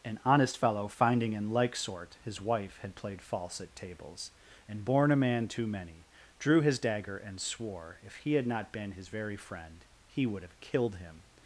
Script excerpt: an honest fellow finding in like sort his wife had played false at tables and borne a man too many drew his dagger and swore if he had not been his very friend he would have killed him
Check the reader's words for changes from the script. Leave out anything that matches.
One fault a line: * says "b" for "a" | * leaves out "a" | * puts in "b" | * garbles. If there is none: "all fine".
all fine